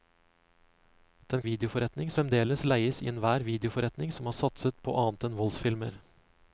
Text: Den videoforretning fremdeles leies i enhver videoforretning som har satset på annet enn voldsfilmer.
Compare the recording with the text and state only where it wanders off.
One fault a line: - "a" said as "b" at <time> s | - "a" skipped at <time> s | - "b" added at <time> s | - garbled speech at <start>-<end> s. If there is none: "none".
none